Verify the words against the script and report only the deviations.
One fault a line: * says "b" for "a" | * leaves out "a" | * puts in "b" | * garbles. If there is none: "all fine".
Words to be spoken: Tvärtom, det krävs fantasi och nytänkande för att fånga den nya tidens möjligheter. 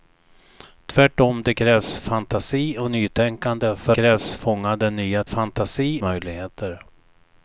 * says "krävs" for "att"
* says "fantasi" for "tidens"